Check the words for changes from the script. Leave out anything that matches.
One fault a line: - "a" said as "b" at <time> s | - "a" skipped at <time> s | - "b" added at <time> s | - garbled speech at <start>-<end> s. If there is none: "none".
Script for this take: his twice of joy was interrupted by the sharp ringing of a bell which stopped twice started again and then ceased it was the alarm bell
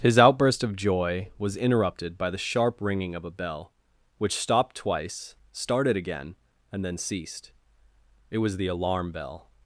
- "twice" said as "outburst" at 0.2 s